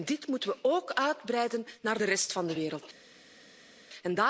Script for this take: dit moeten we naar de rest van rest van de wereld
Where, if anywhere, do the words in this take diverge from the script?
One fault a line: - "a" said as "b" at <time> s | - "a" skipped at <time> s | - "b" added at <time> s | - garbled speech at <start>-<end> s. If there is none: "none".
- "ook uitbreiden" added at 0.6 s
- "rest van" skipped at 2.5 s